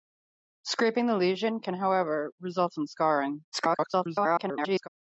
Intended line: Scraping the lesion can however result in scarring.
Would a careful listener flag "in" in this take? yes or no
no